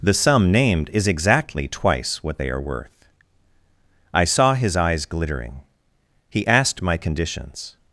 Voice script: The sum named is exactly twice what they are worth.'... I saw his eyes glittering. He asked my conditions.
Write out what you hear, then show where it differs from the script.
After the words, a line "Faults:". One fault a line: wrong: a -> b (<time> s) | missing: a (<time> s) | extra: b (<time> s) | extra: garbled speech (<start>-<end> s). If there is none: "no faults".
The sum named is exactly twice what they are worth.'... I saw his eyes glittering. He asked my conditions.
Faults:
no faults